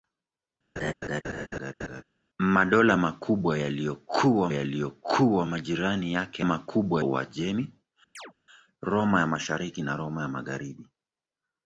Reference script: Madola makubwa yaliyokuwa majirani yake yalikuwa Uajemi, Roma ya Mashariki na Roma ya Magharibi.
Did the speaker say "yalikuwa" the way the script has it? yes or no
no